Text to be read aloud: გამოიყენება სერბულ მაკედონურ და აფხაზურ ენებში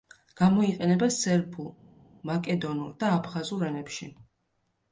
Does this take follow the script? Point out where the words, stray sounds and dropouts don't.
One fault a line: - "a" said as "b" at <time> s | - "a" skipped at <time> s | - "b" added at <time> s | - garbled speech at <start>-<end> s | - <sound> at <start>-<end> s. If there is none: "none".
none